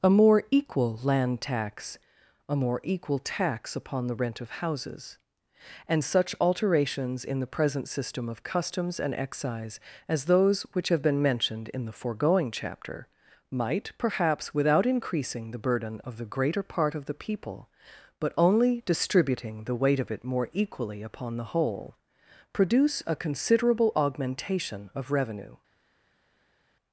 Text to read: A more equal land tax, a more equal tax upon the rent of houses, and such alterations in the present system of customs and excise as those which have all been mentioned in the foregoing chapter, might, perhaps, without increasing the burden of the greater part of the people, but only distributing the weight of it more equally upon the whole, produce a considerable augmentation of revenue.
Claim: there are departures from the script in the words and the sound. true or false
true